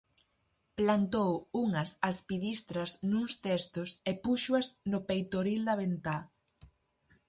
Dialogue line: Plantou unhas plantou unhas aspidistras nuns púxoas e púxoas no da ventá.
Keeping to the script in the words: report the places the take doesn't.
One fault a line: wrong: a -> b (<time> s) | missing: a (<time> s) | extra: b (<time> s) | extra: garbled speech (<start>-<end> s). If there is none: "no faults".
missing: plantou unhas (1.9 s)
wrong: púxoas -> testos (3.5 s)
extra: peitoril (5.1 s)